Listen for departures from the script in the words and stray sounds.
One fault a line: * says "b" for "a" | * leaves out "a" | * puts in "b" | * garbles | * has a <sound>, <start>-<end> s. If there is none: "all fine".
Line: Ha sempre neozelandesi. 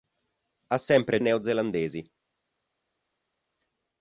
all fine